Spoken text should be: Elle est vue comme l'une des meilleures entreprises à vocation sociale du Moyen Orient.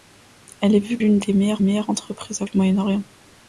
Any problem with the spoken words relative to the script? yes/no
yes